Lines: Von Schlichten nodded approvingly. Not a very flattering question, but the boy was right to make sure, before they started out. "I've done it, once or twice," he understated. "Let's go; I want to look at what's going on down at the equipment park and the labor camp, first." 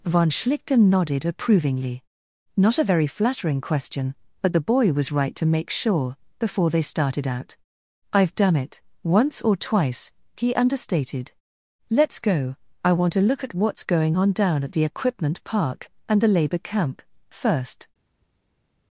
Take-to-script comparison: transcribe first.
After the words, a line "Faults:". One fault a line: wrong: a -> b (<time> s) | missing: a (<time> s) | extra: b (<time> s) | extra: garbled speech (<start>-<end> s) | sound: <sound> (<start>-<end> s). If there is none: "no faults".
Von Schlichten nodded approvingly. Not a very flattering question, but the boy was right to make sure, before they started out. "I've done it, once or twice," he understated. "Let's go; I want to look at what's going on down at the equipment park and the labor camp, first."
Faults:
no faults